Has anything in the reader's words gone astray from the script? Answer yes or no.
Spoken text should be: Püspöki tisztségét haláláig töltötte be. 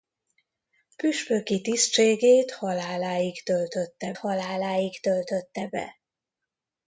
yes